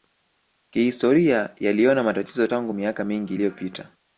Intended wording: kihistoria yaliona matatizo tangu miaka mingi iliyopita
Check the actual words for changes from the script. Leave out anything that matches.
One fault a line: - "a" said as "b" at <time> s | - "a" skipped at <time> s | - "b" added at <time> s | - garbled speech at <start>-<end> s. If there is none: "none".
none